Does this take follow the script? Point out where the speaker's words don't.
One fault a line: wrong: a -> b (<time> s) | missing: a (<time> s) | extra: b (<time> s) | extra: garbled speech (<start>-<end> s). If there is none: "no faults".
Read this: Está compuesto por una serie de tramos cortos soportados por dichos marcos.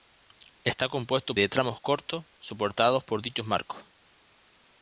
missing: por una serie (1.4 s)